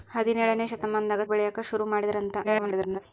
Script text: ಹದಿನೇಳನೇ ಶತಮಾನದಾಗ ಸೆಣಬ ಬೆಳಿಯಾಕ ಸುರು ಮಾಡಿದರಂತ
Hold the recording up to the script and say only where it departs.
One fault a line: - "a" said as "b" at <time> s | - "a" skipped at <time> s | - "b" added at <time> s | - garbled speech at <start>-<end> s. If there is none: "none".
- "ಸೆಣಬ" skipped at 1.2 s
- garbled speech at 2.4-3.0 s